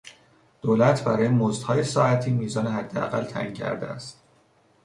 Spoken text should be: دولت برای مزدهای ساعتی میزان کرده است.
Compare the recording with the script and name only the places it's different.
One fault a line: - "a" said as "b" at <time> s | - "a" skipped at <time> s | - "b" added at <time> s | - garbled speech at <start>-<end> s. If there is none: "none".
- "حداقل تعیین" added at 2.7 s